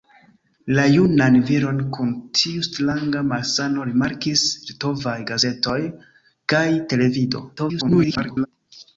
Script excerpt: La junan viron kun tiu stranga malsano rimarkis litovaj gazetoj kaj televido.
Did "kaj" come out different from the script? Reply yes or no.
no